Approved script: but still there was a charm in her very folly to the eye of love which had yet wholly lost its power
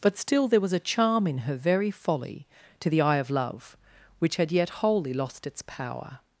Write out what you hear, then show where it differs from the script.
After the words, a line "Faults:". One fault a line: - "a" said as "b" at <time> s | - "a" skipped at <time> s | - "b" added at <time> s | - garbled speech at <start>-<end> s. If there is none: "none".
but still there was a charm in her very folly to the eye of love which had yet wholly lost its power
Faults:
none